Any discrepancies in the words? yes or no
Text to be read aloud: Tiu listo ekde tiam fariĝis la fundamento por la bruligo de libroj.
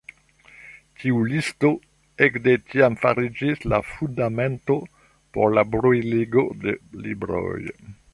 no